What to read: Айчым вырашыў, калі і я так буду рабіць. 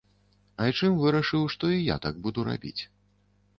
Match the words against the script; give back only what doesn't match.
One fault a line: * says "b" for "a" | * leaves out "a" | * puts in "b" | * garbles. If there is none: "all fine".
* says "што" for "калі"